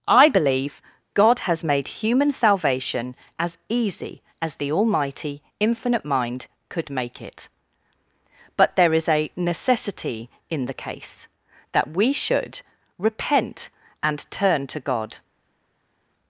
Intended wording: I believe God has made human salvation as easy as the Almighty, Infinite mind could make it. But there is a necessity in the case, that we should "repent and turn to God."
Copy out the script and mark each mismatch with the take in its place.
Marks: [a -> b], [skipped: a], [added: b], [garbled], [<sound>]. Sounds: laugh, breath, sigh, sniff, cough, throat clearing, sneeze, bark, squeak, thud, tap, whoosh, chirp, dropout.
I believe God has made human salvation as easy as the Almighty, Infinite mind could make it. But there is a necessity in the case, that we should "repent and turn to God."